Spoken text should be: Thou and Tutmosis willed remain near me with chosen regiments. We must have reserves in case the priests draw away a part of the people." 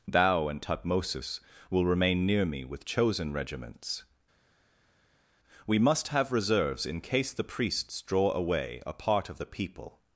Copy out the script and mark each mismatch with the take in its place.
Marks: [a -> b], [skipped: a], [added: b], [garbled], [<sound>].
Thou and Tutmosis [willed -> will] remain near me with chosen regiments. We must have reserves in case the priests draw away a part of the people."